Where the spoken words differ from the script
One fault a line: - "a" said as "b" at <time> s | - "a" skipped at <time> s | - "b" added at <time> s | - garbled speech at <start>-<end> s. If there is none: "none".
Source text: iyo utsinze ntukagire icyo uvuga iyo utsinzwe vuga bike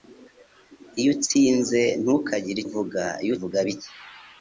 - "icyo" skipped at 2.6 s
- "utsinzwe" skipped at 3.3 s